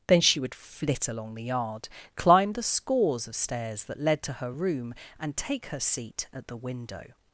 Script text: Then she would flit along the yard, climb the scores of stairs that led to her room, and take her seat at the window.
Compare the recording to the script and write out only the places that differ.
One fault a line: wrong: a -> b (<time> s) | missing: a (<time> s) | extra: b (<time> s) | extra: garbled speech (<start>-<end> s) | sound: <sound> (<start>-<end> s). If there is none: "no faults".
no faults